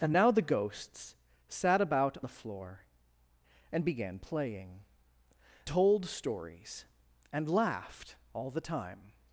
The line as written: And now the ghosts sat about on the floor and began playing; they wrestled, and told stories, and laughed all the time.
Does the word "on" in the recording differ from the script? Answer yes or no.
yes